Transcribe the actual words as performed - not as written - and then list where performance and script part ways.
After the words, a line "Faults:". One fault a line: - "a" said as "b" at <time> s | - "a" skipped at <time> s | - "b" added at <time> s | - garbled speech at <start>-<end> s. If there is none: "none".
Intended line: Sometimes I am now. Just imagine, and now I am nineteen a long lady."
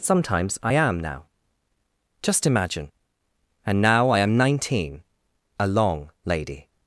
Sometimes I am now. Just imagine, and now I am nineteen a long lady."
Faults:
none